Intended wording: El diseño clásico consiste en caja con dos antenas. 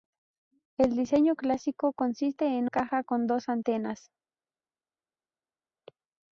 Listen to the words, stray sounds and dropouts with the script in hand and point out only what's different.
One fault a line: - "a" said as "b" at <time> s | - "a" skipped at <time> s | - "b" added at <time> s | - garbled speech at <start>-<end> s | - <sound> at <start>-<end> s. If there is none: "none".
none